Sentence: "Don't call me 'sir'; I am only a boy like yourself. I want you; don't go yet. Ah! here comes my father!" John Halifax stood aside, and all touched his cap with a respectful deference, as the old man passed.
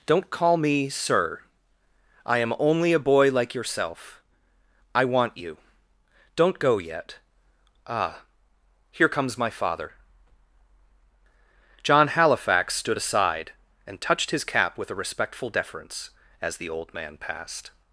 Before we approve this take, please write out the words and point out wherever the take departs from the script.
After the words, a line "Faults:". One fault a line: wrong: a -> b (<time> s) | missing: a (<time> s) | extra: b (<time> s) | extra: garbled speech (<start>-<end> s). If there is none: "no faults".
"Don't call me 'sir'; I am only a boy like yourself. I want you; don't go yet. Ah! here comes my father!" John Halifax stood aside, and touched his cap with a respectful deference, as the old man passed.
Faults:
missing: all (14.0 s)